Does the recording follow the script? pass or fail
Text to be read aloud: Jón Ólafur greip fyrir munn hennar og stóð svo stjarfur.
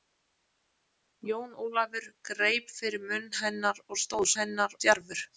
fail